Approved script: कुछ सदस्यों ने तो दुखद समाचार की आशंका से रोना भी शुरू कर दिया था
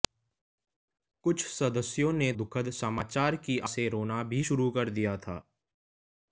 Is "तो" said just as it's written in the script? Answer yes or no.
no